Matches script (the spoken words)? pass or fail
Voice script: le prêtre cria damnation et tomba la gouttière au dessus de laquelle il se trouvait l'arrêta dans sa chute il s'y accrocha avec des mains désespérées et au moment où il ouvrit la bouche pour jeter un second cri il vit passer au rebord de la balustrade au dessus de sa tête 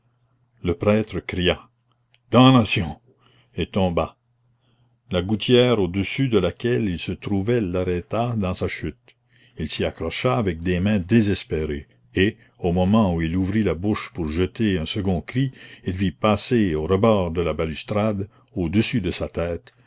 pass